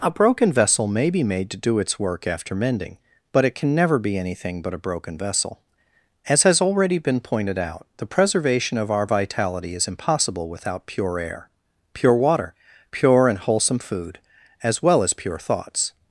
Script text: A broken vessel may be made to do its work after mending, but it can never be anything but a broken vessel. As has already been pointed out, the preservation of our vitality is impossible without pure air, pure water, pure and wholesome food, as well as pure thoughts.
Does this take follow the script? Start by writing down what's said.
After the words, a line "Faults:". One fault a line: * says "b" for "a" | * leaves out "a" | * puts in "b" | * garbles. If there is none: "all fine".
A broken vessel may be made to do its work after mending, but it can never be anything but a broken vessel. As has already been pointed out, the preservation of our vitality is impossible without pure air, pure water, pure and wholesome food, as well as pure thoughts.
Faults:
all fine